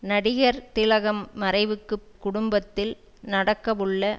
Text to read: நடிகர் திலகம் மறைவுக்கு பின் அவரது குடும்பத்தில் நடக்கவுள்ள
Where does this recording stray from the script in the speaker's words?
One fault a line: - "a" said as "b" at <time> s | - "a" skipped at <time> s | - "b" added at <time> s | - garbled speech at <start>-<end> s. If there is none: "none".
- "பின் அவரது" skipped at 1.9 s